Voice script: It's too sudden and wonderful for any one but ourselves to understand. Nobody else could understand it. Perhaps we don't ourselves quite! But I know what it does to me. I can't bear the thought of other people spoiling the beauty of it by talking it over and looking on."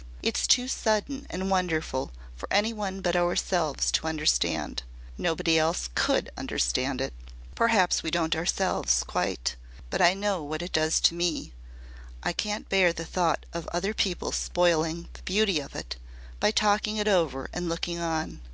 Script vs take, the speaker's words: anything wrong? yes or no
no